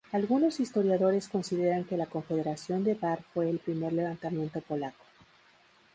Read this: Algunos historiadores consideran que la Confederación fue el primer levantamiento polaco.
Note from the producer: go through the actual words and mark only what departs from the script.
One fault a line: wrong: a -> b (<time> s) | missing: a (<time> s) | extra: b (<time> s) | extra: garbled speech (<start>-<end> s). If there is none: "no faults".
extra: de Bar (2.8 s)